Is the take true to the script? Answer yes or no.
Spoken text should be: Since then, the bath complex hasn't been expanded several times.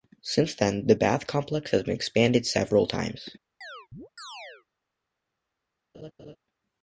no